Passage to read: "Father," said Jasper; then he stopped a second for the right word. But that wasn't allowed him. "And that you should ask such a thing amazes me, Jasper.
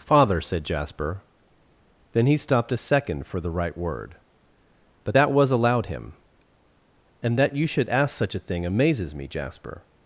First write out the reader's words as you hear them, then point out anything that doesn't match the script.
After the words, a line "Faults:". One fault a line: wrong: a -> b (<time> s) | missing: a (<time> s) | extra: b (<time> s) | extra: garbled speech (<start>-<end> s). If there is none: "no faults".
"Father," said Jasper; then he stopped a second for the right word. But that was allowed him. "And that you should ask such a thing amazes me, Jasper.
Faults:
wrong: wasn't -> was (5.3 s)